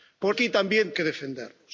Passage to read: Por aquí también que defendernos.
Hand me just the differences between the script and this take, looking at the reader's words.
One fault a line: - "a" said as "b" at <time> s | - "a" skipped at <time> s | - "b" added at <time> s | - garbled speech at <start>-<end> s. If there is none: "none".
none